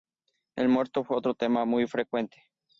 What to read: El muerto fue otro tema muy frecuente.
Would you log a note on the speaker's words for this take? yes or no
no